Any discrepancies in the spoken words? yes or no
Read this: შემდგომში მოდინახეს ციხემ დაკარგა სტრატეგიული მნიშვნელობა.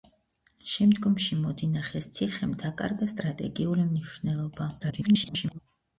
yes